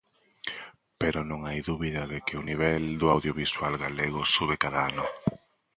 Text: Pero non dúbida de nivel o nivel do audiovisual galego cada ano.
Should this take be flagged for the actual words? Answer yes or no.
yes